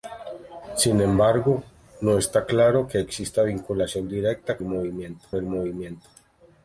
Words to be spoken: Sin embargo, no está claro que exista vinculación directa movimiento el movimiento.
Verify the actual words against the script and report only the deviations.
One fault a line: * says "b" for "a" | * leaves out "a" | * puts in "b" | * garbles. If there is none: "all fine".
all fine